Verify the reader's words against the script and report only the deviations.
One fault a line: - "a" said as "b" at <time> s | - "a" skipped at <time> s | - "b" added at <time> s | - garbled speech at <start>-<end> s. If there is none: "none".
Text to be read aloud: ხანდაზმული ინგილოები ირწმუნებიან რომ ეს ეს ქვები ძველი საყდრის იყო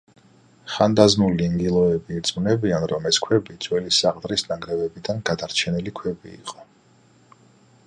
- "ეს" skipped at 3.2 s
- "ნანგრევებიდან გადარჩენილი ქვები" added at 4.5 s